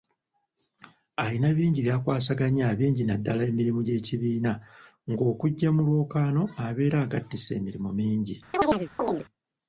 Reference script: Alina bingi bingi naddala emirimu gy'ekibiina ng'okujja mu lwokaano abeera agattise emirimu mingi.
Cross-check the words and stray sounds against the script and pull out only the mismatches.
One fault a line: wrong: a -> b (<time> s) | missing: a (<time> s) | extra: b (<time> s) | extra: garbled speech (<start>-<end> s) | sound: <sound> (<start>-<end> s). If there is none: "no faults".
extra: by'akwasaganya (1.9 s)
sound: chirp (8.5-9.3 s)